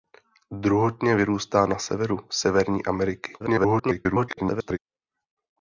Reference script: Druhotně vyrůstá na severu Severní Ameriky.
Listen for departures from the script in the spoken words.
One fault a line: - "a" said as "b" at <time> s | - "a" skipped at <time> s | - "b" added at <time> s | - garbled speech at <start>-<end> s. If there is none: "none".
- garbled speech at 3.4-4.8 s